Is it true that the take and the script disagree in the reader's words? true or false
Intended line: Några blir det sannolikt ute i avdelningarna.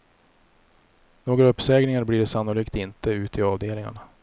true